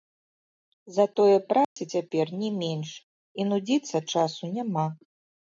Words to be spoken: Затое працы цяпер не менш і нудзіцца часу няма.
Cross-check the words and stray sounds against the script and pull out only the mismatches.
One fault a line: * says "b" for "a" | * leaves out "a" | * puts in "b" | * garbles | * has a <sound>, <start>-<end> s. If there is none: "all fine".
* has a dropout, 1.6-1.8 s